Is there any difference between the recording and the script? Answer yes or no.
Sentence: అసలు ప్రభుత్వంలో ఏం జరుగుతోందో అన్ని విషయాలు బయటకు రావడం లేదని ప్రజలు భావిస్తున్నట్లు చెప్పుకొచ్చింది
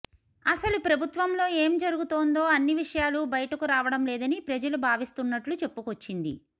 no